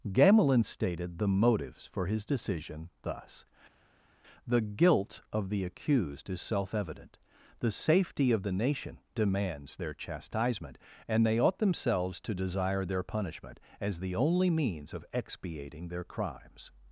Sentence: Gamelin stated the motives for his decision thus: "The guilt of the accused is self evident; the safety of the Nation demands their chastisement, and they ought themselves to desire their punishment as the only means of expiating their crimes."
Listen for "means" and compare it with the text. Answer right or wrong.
right